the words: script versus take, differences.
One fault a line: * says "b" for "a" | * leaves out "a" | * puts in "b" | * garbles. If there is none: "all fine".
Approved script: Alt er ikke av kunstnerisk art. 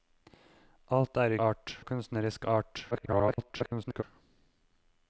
* says "art" for "ikke"
* garbles